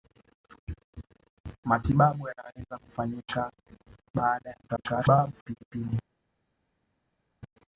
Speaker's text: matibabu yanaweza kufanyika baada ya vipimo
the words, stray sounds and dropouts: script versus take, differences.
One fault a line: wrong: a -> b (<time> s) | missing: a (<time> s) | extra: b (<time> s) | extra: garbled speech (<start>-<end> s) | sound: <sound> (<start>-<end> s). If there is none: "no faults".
extra: garbled speech (4.7-5.6 s)